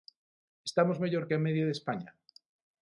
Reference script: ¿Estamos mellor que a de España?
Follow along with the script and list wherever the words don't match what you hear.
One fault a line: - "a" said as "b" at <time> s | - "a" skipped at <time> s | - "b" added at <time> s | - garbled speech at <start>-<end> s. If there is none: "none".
- "media" added at 1.5 s